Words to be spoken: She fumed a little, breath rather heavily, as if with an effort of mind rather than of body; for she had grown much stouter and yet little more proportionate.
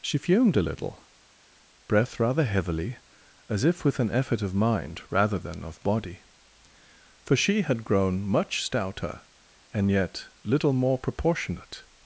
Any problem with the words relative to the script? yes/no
no